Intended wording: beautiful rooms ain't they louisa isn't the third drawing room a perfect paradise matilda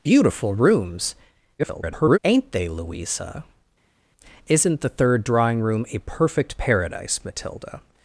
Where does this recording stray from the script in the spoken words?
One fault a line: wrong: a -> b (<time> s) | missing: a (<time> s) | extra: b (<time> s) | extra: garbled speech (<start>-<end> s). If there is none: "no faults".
extra: garbled speech (1.6-2.2 s)